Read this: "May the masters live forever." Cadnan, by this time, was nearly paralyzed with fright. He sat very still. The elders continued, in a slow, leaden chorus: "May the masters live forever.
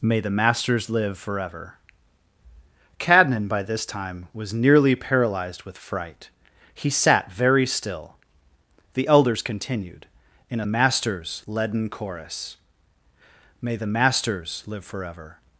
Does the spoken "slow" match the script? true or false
false